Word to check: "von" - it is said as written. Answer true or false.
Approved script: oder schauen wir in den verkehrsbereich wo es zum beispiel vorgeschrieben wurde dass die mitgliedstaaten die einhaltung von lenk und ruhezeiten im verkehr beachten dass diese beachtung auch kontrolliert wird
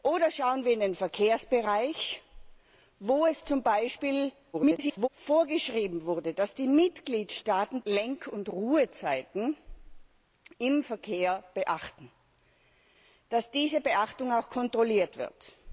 false